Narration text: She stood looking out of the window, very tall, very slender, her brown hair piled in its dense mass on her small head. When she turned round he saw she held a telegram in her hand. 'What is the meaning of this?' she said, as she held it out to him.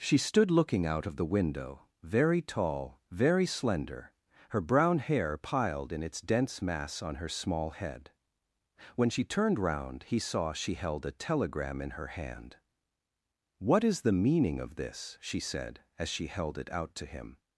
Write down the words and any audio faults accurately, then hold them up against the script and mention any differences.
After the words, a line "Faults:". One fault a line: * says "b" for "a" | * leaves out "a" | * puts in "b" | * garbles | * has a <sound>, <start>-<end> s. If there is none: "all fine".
She stood looking out of the window, very tall, very slender, her brown hair piled in its dense mass on her small head. When she turned round he saw she held a telegram in her hand. 'What is the meaning of this?' she said, as she held it out to him.
Faults:
all fine